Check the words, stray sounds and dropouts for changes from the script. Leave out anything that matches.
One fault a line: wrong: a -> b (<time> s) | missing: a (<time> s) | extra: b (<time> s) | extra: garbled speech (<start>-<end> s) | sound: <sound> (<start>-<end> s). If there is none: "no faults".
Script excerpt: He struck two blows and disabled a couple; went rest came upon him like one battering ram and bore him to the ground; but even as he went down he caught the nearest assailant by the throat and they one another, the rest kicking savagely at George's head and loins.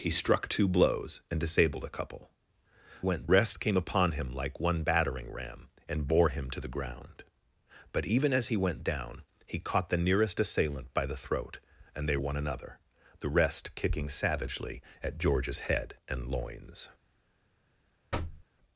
sound: thud (18.1-18.4 s)